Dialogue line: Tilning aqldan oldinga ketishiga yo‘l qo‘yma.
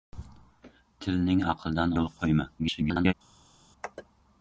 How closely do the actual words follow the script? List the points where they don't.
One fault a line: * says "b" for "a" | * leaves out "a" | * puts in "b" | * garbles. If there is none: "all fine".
* leaves out "oldinga ketishiga"
* garbles